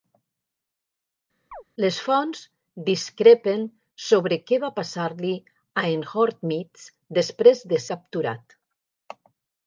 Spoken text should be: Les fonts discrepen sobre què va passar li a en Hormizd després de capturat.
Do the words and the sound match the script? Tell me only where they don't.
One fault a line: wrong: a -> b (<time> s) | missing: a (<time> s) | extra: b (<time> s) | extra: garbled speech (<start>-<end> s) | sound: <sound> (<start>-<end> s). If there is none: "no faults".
sound: chirp (1.5-1.6 s)